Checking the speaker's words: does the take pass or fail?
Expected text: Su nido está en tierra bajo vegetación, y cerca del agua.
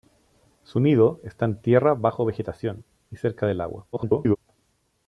fail